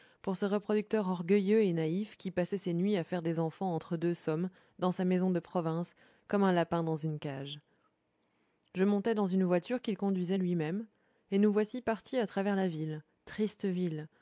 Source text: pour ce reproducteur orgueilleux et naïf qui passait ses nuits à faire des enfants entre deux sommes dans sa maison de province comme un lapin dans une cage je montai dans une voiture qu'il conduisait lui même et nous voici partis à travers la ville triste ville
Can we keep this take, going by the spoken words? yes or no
yes